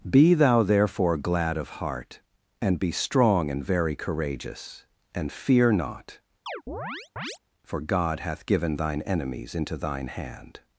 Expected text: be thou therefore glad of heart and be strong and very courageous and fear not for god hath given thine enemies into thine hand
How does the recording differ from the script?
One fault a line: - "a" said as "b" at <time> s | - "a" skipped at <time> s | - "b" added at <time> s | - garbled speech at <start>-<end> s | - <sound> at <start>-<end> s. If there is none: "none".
- chirp at 6.5-7.4 s